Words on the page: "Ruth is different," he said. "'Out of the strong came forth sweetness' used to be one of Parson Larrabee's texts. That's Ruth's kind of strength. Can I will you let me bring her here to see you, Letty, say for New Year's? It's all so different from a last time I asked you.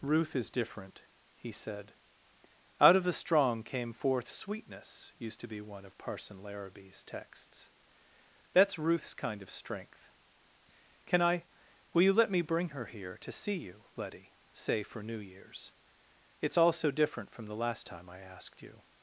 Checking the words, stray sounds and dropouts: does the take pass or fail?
fail